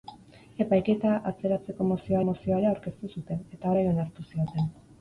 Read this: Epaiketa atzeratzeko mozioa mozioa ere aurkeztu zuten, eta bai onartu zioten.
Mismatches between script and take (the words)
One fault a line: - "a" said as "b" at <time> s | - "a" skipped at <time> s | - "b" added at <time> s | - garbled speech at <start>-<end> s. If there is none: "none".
none